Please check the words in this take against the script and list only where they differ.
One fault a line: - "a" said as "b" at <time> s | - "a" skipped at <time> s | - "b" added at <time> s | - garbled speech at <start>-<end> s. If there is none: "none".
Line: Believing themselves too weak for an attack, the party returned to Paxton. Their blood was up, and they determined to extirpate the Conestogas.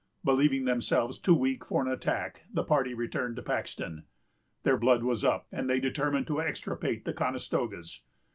none